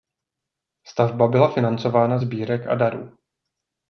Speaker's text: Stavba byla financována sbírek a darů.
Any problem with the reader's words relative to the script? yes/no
no